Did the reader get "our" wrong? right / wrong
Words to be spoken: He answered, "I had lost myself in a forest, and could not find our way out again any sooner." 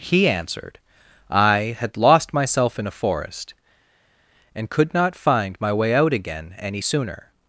wrong